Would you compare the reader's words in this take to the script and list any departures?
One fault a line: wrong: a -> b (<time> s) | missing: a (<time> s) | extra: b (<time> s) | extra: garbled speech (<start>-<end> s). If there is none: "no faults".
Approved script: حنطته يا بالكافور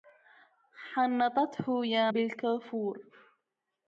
no faults